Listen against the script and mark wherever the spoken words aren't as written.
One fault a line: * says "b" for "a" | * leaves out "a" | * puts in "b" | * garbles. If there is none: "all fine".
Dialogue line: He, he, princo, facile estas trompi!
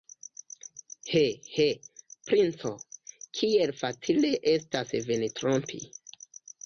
* puts in "kiel"
* puts in "vin"